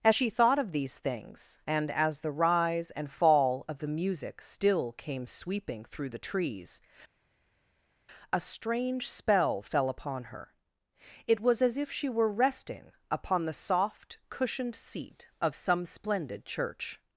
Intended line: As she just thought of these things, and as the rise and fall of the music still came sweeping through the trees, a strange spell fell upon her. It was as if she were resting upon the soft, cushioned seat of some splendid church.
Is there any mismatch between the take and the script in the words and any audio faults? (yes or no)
yes